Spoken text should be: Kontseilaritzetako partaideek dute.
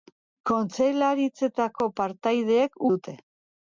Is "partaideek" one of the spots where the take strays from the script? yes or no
no